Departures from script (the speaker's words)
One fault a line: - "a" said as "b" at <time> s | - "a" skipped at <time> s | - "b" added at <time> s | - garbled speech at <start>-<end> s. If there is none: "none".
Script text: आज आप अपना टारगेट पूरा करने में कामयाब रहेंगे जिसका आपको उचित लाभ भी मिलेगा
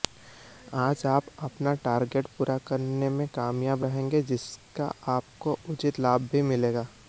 none